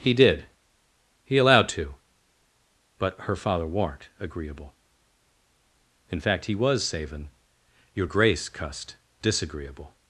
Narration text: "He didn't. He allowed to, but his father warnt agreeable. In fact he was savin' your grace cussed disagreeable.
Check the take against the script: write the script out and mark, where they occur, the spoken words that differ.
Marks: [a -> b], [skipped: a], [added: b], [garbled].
"He [didn't. -> did] He allowed to, but [his -> her] father warnt agreeable. In fact he was savin' your grace cussed disagreeable.